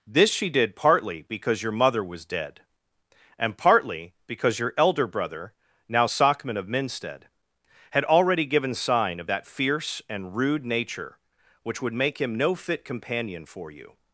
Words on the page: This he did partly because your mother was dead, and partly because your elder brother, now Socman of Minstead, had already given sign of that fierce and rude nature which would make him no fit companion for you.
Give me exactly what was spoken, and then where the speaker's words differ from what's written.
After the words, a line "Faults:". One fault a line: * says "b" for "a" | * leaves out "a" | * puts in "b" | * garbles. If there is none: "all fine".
This she did partly because your mother was dead, and partly because your elder brother, now Socman of Minstead, had already given sign of that fierce and rude nature which would make him no fit companion for you.
Faults:
* says "she" for "he"